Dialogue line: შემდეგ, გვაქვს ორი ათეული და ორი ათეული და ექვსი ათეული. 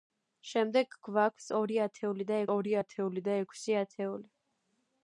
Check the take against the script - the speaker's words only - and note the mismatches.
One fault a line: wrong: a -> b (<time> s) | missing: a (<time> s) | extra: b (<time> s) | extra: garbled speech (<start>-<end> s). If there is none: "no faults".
no faults